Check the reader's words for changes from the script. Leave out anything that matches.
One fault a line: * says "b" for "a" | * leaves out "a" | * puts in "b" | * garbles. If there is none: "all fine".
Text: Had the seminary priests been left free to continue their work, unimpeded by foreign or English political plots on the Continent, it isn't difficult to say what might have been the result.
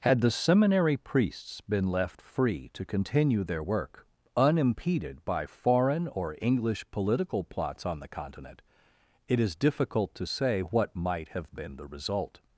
* says "is" for "isn't"